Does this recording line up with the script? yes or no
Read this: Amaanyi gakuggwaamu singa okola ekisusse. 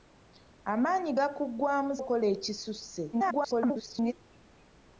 no